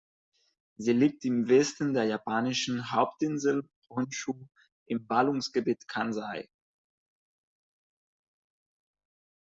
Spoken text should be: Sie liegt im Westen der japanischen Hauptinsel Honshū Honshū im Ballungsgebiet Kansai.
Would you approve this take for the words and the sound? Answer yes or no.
no